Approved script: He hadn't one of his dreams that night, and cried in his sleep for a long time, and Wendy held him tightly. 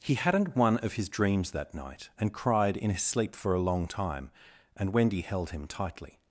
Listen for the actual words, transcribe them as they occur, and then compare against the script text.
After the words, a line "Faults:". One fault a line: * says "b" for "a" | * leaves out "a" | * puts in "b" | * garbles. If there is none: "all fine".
He hadn't one of his dreams that night, and cried in his sleep for a long time, and Wendy held him tightly.
Faults:
all fine